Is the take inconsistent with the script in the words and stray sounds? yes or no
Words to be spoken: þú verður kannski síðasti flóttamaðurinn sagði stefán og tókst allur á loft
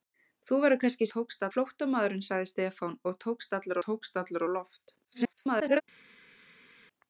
yes